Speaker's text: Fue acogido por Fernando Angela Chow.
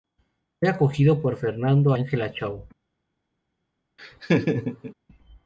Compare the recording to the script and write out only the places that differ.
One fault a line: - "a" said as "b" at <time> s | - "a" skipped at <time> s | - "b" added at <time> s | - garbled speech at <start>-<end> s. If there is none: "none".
none